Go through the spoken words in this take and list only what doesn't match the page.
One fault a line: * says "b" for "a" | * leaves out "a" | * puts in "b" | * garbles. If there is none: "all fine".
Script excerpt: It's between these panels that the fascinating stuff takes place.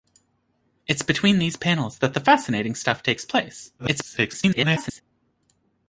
* garbles